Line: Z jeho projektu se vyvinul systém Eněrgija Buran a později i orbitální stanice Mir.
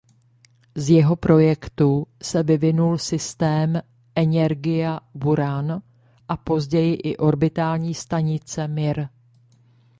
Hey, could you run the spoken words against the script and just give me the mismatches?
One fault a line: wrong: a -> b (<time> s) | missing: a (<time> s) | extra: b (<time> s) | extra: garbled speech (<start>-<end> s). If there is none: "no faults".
no faults